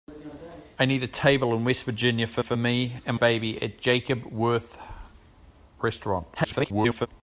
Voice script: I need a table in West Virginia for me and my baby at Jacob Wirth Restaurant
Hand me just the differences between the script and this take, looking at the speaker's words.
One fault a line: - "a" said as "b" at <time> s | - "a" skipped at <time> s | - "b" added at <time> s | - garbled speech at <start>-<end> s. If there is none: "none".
- "for" added at 2.4 s
- "my" skipped at 3.2 s
- garbled speech at 6.3-7.1 s